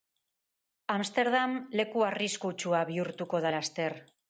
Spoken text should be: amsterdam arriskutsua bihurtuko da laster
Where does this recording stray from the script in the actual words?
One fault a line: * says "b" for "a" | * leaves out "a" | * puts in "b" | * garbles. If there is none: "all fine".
* puts in "leku"